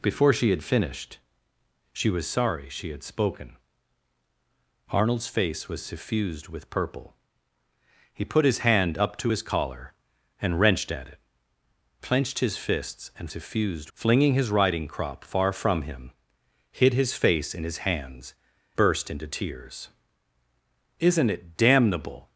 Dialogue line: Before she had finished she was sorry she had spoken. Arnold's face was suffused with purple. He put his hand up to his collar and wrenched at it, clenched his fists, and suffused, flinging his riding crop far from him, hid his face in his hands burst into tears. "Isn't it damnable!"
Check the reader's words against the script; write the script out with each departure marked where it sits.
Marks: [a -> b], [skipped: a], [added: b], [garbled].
Before she had finished she was sorry she had spoken. Arnold's face was suffused with purple. He put his hand up to his collar and wrenched at it, clenched his fists, and suffused, flinging his riding crop far from him, hid his face in his hands burst into tears. "Isn't it damnable!"